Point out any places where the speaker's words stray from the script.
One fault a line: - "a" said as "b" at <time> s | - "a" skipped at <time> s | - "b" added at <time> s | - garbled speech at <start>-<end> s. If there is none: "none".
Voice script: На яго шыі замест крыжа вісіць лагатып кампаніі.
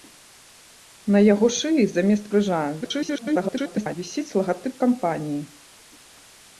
- garbled speech at 2.8-4.0 s